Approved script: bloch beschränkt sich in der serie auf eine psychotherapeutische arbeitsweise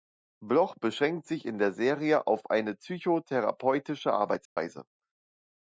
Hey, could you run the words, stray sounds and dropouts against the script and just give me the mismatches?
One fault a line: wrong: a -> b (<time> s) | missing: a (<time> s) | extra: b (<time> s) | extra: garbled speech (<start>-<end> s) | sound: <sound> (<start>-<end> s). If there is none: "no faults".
sound: dropout (4.5-4.6 s)